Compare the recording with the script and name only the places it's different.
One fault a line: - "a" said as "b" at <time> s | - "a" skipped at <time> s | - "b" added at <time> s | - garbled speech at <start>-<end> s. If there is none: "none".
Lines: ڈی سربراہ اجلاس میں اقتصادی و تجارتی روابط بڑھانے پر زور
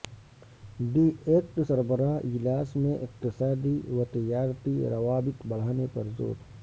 - "ایٹ" added at 1.2 s